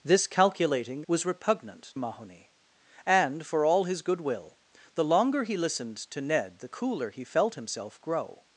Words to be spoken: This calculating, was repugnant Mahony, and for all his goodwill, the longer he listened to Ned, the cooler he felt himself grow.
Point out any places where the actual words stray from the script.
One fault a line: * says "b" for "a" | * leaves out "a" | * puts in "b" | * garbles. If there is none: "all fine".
all fine